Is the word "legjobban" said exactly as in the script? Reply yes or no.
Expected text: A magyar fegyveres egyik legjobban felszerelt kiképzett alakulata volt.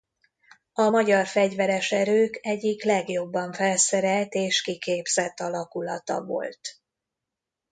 yes